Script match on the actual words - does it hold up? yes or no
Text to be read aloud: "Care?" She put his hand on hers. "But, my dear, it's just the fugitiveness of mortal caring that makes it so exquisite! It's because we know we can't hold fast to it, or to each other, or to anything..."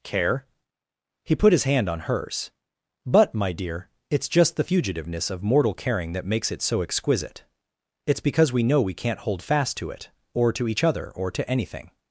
no